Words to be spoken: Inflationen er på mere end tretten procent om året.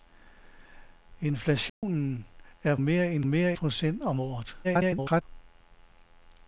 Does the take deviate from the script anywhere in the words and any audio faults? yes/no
yes